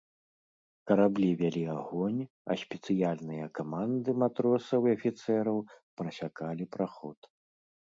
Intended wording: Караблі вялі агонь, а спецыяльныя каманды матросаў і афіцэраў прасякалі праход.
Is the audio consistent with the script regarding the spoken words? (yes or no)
yes